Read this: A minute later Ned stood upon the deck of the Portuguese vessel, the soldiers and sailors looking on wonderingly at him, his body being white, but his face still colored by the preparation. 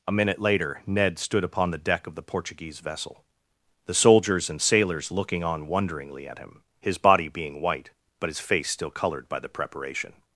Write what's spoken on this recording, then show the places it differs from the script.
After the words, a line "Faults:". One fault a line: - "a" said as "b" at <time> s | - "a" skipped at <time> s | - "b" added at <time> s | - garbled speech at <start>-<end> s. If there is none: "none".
A minute later Ned stood upon the deck of the Portuguese vessel, the soldiers and sailors looking on wonderingly at him, his body being white, but his face still colored by the preparation.
Faults:
none